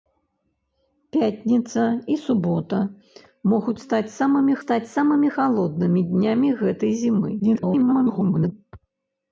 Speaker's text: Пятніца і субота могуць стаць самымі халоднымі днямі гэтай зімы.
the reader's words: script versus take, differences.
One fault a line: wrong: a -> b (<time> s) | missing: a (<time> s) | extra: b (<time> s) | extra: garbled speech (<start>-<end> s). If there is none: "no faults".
extra: стаць самымі (4.6 s)
extra: garbled speech (7.4-8.5 s)